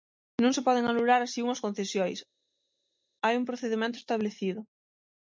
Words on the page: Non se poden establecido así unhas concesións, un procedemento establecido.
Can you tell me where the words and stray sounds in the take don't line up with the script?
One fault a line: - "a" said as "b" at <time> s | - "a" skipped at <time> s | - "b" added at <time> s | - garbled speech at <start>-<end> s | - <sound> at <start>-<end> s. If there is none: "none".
- "establecido" said as "anular" at 0.9 s
- "hai" added at 3.2 s